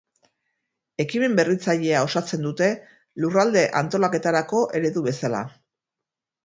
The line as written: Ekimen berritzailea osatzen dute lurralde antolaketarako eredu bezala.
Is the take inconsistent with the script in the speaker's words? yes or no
no